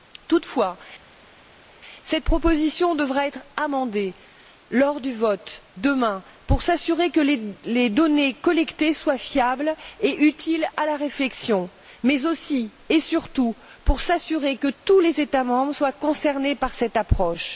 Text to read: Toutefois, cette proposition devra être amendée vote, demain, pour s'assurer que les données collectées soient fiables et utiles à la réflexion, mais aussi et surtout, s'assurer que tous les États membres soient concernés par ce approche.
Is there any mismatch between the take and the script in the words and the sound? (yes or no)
yes